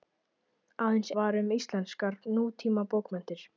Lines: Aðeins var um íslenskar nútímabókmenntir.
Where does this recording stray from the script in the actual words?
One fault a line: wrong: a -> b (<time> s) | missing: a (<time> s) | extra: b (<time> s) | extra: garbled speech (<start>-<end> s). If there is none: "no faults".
no faults